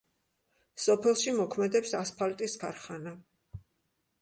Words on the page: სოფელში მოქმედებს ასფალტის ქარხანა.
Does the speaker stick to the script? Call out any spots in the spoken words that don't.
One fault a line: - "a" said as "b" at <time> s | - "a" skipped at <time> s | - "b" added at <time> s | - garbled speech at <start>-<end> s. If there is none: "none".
none